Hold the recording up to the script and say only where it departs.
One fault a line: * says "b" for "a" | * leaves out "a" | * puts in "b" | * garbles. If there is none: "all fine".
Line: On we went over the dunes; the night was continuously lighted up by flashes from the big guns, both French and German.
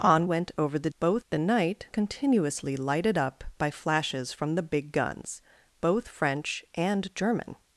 * leaves out "we"
* says "both" for "dunes"
* leaves out "was"